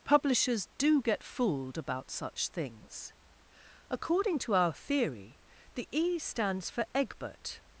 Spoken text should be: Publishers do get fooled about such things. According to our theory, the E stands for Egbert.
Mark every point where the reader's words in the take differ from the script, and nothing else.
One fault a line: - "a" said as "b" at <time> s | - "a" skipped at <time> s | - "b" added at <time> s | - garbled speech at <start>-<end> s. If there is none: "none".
none